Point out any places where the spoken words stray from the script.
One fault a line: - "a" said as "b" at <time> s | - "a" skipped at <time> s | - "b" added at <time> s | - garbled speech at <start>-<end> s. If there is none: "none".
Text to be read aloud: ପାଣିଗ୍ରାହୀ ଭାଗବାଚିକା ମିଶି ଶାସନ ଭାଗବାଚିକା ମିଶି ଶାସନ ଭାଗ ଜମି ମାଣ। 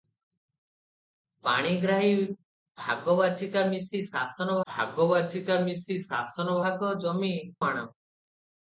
none